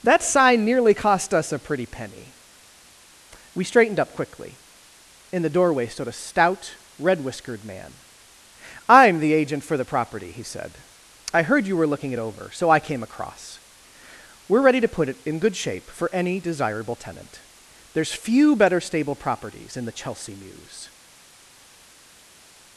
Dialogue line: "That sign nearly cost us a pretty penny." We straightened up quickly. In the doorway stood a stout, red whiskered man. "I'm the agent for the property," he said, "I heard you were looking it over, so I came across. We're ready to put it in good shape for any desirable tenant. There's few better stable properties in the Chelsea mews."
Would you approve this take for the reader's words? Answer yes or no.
yes